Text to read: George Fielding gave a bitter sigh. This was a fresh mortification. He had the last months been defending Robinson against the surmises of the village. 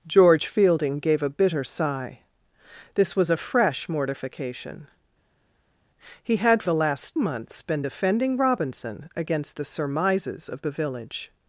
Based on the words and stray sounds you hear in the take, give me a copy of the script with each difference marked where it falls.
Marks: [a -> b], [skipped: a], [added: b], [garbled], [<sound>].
George Fielding gave a bitter sigh. This was a fresh mortification. He had the last months been defending Robinson against the surmises of the village.